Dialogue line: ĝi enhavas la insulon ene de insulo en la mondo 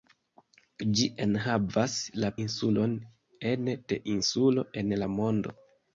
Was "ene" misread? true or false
false